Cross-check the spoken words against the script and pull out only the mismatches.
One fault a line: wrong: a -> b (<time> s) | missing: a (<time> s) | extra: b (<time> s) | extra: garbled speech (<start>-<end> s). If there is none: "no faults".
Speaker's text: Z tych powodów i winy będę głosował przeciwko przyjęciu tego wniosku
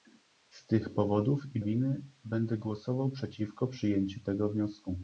no faults